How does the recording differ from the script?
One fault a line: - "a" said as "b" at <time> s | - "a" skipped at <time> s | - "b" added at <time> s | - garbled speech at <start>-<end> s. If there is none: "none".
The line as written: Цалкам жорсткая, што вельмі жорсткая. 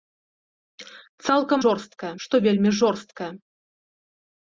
none